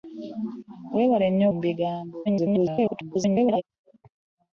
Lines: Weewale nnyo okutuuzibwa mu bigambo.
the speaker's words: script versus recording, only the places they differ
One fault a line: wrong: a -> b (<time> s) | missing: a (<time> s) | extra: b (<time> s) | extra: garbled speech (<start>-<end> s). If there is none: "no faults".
missing: okutuuzibwa (1.4 s)
extra: garbled speech (2.3-3.6 s)